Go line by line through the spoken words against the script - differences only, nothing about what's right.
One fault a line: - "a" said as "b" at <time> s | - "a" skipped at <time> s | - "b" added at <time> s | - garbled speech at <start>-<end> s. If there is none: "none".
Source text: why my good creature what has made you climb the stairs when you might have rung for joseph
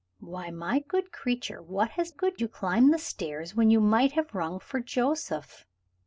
- "made" said as "good" at 2.1 s